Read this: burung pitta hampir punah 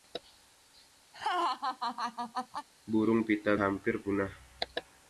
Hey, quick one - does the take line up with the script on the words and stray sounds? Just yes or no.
no